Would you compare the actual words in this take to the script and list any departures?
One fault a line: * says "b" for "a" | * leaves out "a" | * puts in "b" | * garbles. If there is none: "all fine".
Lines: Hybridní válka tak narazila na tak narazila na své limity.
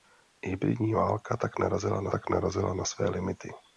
all fine